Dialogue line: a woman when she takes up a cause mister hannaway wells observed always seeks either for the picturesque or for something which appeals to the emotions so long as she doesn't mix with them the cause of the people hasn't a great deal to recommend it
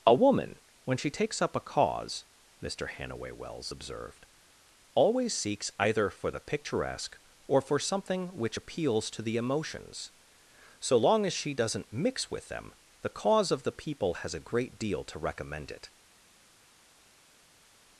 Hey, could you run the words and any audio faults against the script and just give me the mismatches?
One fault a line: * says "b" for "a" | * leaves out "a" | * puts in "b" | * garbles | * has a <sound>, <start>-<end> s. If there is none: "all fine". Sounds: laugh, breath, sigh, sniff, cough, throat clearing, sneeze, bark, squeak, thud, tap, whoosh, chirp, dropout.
* says "has" for "hasn't"